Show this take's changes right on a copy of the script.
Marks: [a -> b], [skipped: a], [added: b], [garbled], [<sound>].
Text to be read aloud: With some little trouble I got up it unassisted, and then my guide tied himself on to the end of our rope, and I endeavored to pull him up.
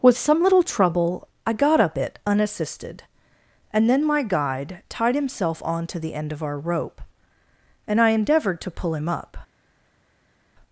With some little trouble I got up it unassisted, and then my guide tied himself on to the end of our rope, and I endeavored to pull him up.